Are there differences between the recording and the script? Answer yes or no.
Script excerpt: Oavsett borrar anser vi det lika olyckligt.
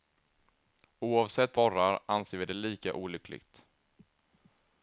no